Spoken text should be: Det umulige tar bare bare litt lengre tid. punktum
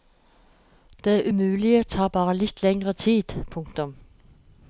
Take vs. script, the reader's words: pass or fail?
fail